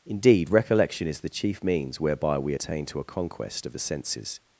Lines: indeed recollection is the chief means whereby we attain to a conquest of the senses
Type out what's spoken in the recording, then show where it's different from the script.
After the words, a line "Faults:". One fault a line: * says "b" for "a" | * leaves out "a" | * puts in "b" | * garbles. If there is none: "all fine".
indeed recollection is the chief means whereby we attain to a conquest of the senses
Faults:
all fine